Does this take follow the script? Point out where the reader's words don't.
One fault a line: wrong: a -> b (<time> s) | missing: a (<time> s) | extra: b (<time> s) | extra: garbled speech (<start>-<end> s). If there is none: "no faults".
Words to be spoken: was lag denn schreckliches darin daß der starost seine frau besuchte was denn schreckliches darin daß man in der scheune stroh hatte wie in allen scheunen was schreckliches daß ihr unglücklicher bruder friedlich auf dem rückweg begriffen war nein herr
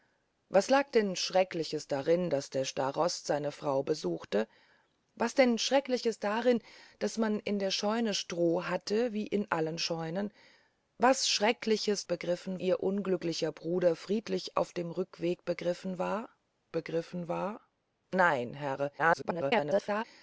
wrong: daß -> begriffen (12.1 s)
extra: begriffen war (16.7 s)
extra: garbled speech (19.0-20.0 s)